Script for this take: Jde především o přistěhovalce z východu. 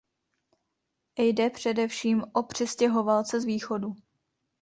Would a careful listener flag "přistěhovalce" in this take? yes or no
no